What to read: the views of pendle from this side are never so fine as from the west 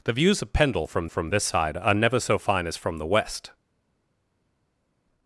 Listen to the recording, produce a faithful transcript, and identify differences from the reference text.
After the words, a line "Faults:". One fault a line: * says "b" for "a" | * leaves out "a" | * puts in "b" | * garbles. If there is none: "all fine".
the views of pendle from from this side are never so fine as from the west
Faults:
* puts in "from"